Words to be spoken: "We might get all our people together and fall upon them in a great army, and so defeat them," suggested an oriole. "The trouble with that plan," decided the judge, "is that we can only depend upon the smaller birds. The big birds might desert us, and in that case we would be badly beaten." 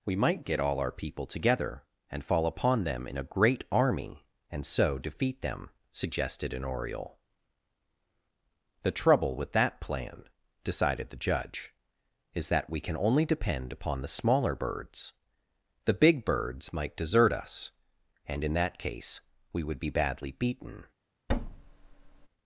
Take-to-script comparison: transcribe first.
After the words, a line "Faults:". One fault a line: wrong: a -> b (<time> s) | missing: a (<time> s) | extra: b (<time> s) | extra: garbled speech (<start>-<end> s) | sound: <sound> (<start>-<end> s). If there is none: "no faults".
"We might get all our people together and fall upon them in a great army, and so defeat them," suggested an oriole. "The trouble with that plan," decided the judge, "is that we can only depend upon the smaller birds. The big birds might desert us, and in that case we would be badly beaten."
Faults:
sound: thud (21.3-22.3 s)